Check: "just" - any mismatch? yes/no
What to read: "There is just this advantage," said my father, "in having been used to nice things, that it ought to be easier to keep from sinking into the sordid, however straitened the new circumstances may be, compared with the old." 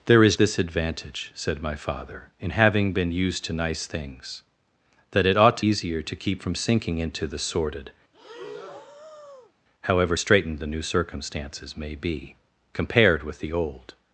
yes